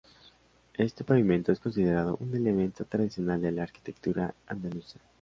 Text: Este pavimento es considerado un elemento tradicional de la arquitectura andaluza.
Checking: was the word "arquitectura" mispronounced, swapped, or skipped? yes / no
no